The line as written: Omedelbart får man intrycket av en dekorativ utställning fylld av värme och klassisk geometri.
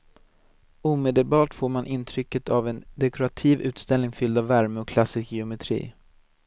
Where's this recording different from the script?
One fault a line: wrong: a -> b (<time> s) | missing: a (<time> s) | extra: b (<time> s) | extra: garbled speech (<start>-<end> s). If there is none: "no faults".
no faults